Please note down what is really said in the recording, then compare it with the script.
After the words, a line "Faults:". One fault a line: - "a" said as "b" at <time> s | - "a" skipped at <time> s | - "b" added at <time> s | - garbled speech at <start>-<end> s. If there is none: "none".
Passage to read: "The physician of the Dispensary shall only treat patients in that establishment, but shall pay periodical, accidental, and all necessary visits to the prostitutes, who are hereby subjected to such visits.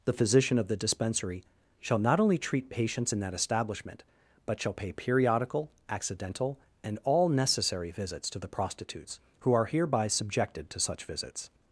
"The physician of the Dispensary shall not only treat patients in that establishment, but shall pay periodical, accidental, and all necessary visits to the prostitutes, who are hereby subjected to such visits.
Faults:
- "not" added at 2.0 s